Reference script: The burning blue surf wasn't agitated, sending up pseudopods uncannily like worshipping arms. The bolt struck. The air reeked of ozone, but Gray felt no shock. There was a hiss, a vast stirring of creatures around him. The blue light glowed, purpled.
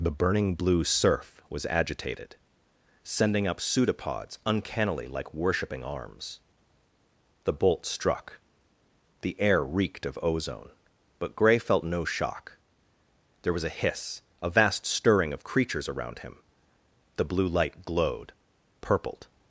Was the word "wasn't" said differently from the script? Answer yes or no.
yes